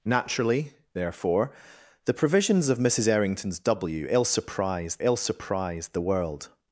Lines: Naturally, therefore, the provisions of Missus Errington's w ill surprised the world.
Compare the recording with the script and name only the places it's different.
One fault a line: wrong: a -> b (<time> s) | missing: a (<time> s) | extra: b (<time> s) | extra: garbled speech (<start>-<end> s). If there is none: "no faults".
extra: ill surprised (5.0 s)